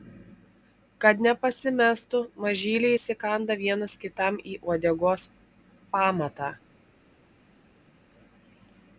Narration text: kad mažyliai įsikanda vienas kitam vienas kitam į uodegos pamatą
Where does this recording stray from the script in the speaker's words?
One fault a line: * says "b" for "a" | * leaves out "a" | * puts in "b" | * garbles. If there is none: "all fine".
* puts in "nepasimestų"
* leaves out "vienas kitam"